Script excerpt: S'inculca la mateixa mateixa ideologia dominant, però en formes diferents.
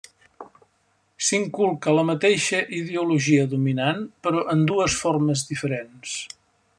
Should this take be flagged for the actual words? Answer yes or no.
yes